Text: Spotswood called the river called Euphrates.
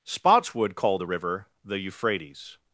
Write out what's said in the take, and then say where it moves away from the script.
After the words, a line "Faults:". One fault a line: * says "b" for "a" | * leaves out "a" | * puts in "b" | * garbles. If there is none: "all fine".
Spotswood called the river the Euphrates.
Faults:
* says "the" for "called"